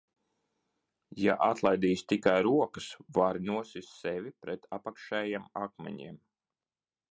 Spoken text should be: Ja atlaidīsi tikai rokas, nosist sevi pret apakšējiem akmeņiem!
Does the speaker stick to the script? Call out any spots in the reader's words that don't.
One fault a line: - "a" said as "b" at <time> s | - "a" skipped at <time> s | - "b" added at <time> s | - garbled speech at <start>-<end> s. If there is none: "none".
- "vari" added at 3.2 s